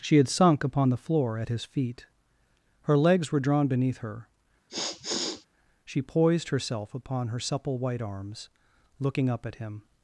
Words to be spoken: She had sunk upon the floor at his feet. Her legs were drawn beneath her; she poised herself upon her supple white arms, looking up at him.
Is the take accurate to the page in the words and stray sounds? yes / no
no